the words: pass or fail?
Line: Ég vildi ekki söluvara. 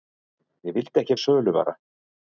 pass